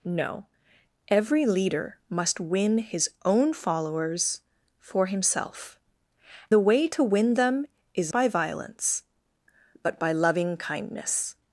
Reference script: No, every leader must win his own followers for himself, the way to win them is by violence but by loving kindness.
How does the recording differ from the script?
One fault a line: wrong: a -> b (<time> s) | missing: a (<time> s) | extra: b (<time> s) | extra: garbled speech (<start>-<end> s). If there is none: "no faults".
no faults